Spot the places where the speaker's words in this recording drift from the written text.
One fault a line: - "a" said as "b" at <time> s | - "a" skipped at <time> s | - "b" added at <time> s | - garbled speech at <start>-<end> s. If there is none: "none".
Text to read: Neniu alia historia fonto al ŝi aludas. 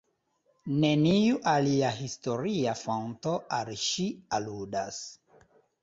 none